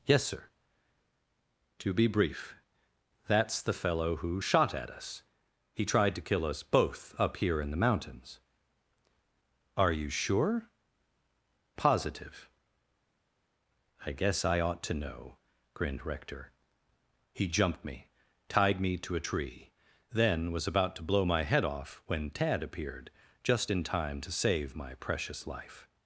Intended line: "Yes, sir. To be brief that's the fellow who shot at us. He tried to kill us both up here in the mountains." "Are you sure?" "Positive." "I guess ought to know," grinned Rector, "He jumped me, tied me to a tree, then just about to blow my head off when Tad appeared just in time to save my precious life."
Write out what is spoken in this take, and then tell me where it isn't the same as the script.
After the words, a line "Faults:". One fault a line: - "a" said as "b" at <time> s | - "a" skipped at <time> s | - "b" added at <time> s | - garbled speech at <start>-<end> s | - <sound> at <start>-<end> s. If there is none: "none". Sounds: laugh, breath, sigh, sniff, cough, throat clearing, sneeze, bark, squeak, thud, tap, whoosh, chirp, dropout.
"Yes, sir. To be brief that's the fellow who shot at us. He tried to kill us both up here in the mountains." "Are you sure?" "Positive." "I guess I ought to know," grinned Rector, "He jumped me, tied me to a tree, then was about to blow my head off when Tad appeared just in time to save my precious life."
Faults:
- "I" added at 14.5 s
- "just" said as "was" at 20.5 s